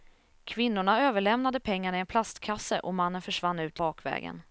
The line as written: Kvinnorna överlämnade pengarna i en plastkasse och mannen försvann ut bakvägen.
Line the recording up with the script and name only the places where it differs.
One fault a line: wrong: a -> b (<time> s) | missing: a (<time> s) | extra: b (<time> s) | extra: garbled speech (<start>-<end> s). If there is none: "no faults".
no faults